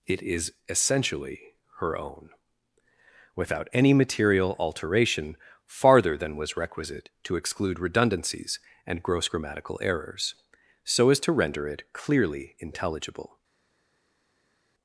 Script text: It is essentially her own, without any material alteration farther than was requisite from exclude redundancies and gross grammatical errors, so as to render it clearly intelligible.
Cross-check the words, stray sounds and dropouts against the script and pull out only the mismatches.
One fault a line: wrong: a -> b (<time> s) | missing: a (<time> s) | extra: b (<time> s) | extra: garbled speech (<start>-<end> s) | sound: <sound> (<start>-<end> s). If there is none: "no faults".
wrong: from -> to (7.2 s)